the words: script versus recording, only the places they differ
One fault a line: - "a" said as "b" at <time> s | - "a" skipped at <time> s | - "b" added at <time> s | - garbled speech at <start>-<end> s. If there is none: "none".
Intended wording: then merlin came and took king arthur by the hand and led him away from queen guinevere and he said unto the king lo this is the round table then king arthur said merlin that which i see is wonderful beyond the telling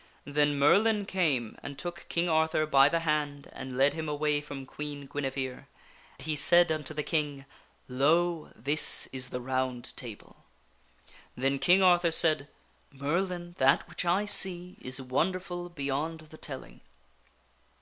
- "and" skipped at 5.7 s